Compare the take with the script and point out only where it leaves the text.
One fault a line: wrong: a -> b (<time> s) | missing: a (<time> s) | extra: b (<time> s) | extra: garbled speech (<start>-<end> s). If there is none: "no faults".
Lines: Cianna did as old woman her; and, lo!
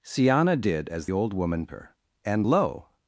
no faults